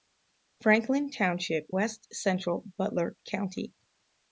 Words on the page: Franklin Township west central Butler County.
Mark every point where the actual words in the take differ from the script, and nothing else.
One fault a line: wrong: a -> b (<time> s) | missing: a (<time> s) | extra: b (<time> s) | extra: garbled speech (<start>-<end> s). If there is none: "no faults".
no faults